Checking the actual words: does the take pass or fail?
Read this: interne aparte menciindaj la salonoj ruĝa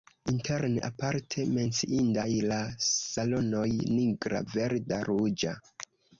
fail